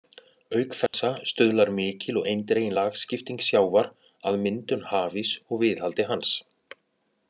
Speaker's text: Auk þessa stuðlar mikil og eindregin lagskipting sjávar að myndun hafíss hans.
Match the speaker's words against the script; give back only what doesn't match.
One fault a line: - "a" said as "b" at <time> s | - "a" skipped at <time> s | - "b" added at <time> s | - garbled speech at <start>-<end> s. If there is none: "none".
- "og viðhaldi" added at 5.5 s